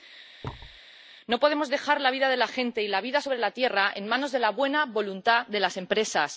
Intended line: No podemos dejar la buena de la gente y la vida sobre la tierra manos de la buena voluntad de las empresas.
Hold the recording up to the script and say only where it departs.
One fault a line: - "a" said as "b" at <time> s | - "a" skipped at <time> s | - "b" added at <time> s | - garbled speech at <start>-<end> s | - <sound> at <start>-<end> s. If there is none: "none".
- thud at 0.4-0.8 s
- "buena" said as "vida" at 2.1 s
- "en" added at 3.9 s